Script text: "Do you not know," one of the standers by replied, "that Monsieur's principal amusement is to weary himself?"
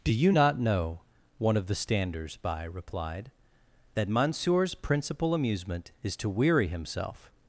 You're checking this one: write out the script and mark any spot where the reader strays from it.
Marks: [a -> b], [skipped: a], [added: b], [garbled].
"Do you not know," one of the standers by replied, "that Monsieur's principal amusement is to weary himself?"